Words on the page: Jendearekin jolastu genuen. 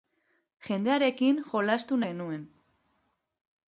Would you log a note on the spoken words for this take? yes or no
no